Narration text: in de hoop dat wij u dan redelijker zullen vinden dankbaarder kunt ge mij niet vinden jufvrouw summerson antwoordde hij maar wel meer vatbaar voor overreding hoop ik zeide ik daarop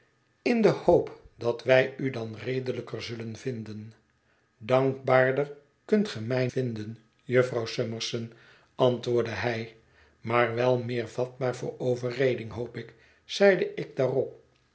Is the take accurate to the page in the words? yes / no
no